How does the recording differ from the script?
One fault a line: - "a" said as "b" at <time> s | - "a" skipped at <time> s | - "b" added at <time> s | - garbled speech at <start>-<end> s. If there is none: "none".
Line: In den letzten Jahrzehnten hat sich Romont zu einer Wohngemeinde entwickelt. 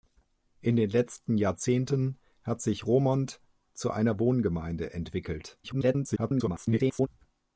- garbled speech at 5.6-7.1 s